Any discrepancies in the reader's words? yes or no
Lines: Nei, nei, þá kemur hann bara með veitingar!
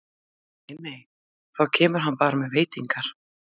no